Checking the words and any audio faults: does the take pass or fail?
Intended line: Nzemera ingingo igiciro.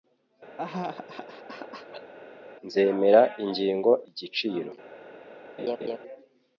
fail